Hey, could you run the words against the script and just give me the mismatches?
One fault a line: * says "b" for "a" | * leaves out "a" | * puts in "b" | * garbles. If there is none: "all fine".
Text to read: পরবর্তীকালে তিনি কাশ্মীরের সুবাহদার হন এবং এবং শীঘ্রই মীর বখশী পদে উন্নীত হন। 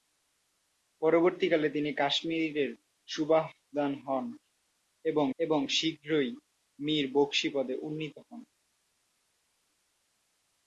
all fine